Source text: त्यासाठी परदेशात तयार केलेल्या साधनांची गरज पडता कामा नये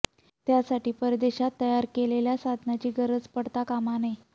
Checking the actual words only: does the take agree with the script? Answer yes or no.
yes